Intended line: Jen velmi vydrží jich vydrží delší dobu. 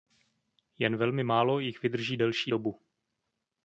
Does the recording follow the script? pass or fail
fail